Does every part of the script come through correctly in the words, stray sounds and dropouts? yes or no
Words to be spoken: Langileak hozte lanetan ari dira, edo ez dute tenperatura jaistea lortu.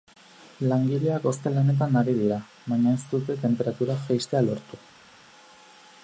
no